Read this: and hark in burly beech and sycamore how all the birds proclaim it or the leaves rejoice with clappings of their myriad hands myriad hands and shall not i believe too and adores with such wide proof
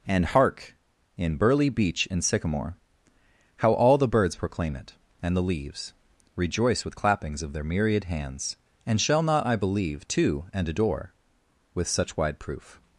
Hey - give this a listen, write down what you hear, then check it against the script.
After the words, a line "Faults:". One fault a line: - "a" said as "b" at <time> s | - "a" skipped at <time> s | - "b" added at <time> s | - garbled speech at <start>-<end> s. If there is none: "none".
and hark in burly beech and sycamore how all the birds proclaim it and the leaves rejoice with clappings of their myriad hands and shall not i believe too and adore with such wide proof
Faults:
- "or" said as "and" at 5.2 s
- "myriad hands" skipped at 8.6 s
- "adores" said as "adore" at 10.7 s